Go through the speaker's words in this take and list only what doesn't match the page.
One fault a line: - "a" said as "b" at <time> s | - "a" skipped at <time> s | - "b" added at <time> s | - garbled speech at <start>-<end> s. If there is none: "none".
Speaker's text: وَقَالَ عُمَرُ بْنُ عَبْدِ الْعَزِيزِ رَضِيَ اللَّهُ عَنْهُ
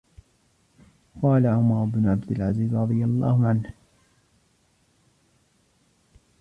none